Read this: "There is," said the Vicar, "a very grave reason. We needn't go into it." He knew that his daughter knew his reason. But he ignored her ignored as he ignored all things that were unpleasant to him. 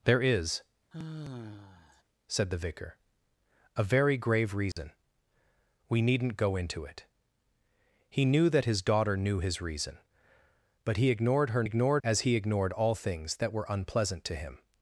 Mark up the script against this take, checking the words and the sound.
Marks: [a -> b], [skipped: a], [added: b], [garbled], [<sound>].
"There is," [sigh] said the Vicar, "a very grave reason. [dropout] We needn't go into it." He knew that his daughter knew his reason. But he ignored her ignored as he ignored all things that were unpleasant to him.